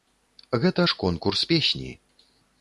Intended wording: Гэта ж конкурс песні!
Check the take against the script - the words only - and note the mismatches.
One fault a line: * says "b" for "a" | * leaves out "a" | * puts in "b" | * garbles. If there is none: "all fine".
all fine